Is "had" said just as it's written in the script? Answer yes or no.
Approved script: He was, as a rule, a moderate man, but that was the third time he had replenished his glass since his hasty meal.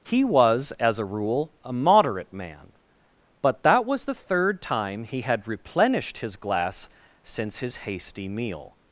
yes